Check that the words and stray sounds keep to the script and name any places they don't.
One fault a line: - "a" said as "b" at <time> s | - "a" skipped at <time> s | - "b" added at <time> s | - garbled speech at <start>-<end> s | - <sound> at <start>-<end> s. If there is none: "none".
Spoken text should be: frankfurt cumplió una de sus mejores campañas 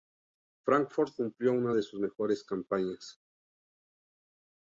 none